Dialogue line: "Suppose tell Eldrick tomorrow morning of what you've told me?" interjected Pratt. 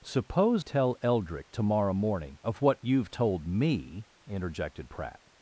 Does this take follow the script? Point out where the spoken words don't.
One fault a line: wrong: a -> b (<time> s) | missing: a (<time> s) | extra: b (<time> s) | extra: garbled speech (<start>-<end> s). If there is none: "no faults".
no faults